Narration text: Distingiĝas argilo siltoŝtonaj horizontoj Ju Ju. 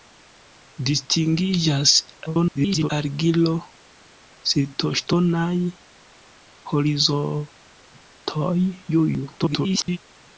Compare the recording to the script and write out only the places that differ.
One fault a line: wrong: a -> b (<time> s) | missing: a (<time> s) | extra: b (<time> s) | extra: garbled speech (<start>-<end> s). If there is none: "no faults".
extra: garbled speech (2.3-2.9 s)
extra: garbled speech (9.4-10.0 s)